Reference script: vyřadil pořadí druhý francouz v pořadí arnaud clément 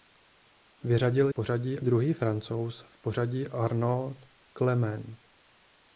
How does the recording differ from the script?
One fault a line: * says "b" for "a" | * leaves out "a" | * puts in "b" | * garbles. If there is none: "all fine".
all fine